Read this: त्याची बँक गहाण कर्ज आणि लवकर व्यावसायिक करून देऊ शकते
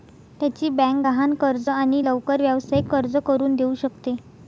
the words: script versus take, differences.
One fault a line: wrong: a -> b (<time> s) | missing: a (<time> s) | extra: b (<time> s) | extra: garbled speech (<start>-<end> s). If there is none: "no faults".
extra: कर्ज (2.9 s)